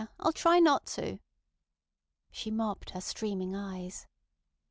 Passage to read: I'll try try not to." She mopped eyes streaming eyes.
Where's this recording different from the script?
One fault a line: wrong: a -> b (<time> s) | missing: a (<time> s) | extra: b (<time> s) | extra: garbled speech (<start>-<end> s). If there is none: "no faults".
missing: try (0.6 s)
wrong: eyes -> her (2.9 s)